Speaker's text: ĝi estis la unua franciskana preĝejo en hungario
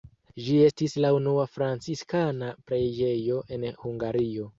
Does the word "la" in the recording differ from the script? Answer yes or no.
no